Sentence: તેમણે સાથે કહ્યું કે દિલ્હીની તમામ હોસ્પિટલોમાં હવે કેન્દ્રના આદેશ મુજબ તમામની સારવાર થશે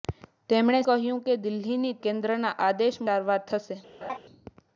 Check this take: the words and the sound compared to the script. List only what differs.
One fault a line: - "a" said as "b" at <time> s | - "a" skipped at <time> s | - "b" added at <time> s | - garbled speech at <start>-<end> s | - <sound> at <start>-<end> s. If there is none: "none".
- "સાથે" skipped at 0.8 s
- "તમામ હોસ્પિટલોમાં હવે" skipped at 2.0 s
- "મુજબ તમામની" skipped at 3.0 s
- laugh at 4.0-4.2 s